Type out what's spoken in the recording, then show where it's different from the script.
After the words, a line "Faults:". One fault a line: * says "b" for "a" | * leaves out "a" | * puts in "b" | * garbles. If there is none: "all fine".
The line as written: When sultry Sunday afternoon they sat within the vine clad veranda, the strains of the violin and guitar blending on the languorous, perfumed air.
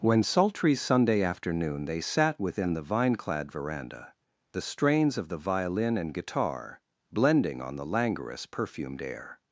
When sultry Sunday afternoon they sat within the vine clad veranda, the strains of the violin and guitar blending on the languorous, perfumed air.
Faults:
all fine